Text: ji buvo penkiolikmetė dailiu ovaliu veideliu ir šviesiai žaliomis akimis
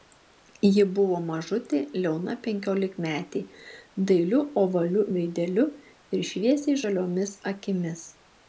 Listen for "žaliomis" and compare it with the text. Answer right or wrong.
right